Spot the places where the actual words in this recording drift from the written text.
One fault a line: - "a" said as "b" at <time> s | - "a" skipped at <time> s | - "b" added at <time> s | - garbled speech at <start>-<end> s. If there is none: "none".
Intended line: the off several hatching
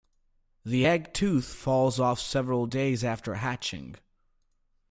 - "egg tooth falls" added at 0.8 s
- "days after" added at 2.6 s